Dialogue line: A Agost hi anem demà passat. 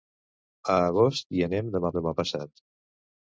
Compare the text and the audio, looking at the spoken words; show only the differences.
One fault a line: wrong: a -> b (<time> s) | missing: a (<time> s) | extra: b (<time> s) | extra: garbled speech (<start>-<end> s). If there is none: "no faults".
extra: demà (2.0 s)